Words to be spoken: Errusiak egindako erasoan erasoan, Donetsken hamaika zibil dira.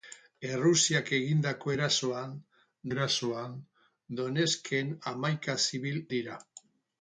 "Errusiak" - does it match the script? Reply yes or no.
yes